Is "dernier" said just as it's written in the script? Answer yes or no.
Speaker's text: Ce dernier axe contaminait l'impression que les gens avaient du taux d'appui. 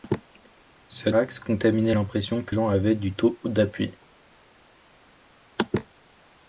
no